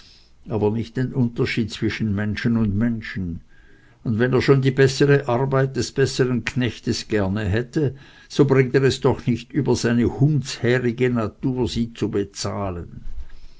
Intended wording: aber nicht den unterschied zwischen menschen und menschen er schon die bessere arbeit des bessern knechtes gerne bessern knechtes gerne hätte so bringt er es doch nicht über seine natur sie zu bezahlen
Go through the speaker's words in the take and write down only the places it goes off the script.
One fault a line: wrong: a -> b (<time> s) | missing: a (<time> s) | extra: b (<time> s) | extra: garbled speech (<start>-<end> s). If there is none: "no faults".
extra: und wenn (4.0 s)
missing: bessern knechtes gerne (7.4 s)
extra: hundshärige (10.2 s)